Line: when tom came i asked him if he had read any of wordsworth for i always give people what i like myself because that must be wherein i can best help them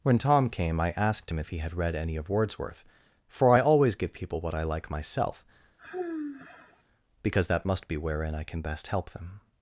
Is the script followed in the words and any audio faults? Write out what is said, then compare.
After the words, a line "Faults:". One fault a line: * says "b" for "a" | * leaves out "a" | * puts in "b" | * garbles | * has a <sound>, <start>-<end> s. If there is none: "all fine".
when tom came i asked him if he had read any of wordsworth for i always give people what i like myself because that must be wherein i can best help them
Faults:
* has a sigh, 5.8-6.8 s